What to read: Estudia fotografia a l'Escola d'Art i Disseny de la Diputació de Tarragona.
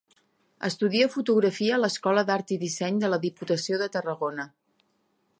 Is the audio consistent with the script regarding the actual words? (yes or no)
yes